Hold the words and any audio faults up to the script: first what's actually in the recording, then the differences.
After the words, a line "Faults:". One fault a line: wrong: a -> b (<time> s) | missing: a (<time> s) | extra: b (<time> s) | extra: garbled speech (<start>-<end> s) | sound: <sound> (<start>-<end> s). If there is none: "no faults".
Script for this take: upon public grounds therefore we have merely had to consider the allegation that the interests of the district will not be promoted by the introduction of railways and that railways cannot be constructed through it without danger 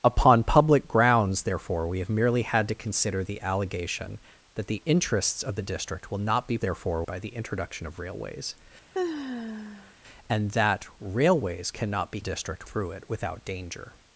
upon public grounds therefore we have merely had to consider the allegation that the interests of the district will not be therefore by the introduction of railways and that railways cannot be district through it without danger
Faults:
wrong: promoted -> therefore (6.6 s)
sound: sigh (8.9-9.9 s)
wrong: constructed -> district (12.2 s)